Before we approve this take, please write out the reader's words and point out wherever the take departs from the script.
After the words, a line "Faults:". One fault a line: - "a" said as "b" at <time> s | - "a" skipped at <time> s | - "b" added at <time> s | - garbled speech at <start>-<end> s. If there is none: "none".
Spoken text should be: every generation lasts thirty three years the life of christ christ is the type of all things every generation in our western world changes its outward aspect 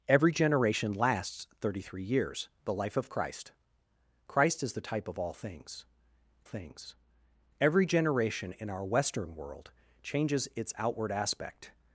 every generation lasts thirty three years the life of christ christ is the type of all things things every generation in our western world changes its outward aspect
Faults:
- "things" added at 6.4 s